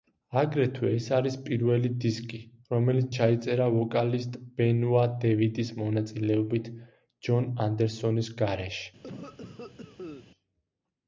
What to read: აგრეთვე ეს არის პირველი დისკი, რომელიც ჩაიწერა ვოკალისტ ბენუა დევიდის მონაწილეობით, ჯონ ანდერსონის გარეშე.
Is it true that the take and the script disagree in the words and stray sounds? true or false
true